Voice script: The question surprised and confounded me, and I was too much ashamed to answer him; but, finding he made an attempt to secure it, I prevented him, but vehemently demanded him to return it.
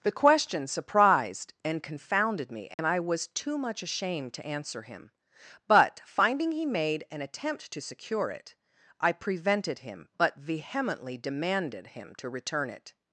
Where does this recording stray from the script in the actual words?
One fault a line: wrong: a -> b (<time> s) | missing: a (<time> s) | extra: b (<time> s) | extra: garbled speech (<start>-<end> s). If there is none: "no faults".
no faults